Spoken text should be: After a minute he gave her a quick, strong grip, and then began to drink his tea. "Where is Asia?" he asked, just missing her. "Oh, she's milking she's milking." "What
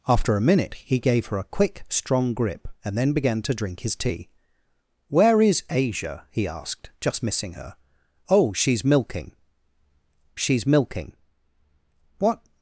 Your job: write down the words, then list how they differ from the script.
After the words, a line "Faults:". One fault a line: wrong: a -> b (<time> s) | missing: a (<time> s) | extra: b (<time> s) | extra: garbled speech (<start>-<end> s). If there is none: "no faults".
After a minute he gave her a quick, strong grip, and then began to drink his tea. "Where is Asia?" he asked, just missing her. "Oh, she's milking she's milking." "What
Faults:
no faults